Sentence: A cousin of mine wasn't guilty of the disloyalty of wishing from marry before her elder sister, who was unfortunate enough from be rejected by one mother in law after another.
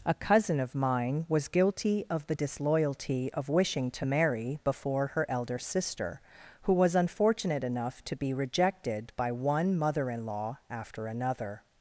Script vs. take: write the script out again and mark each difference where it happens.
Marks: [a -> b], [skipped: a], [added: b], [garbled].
A cousin of mine [wasn't -> was] guilty of the disloyalty of wishing [from -> to] marry before her elder sister, who was unfortunate enough [from -> to] be rejected by one mother in law after another.